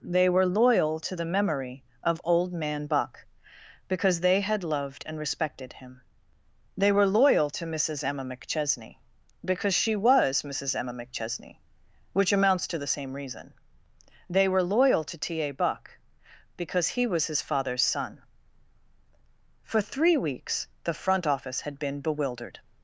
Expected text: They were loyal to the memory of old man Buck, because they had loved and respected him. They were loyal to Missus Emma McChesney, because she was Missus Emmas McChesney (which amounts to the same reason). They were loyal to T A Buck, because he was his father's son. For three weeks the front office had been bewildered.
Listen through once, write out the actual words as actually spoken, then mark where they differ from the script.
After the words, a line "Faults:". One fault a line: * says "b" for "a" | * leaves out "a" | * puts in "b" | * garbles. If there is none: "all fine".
They were loyal to the memory of old man Buck, because they had loved and respected him. They were loyal to Missus Emma McChesney, because she was Missus Emma McChesney (which amounts to the same reason). They were loyal to T A Buck, because he was his father's son. For three weeks the front office had been bewildered.
Faults:
* says "Emma" for "Emmas"